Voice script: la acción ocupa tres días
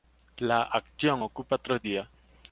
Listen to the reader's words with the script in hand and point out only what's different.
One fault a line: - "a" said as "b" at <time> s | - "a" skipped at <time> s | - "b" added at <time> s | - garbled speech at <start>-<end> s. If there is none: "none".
none